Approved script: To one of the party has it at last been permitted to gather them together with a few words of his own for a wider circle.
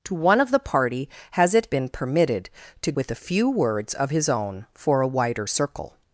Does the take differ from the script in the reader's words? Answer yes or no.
yes